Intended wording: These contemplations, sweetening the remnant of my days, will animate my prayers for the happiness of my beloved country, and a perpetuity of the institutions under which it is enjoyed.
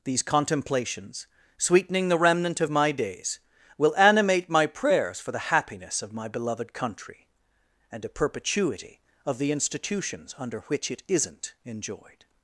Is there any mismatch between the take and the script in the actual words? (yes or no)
yes